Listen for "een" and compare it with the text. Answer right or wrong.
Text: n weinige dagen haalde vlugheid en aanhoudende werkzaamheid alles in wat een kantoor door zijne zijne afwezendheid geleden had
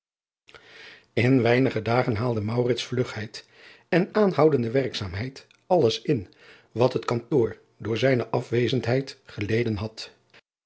wrong